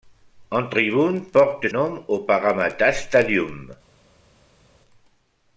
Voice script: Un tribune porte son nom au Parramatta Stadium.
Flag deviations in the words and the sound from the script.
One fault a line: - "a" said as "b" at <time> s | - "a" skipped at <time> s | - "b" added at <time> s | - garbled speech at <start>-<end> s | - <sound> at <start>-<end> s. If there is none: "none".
- "son" skipped at 1.7 s